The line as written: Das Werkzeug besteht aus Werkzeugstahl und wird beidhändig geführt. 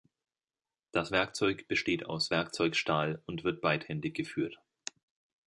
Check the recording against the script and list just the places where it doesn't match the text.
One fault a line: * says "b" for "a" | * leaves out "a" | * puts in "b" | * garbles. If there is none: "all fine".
all fine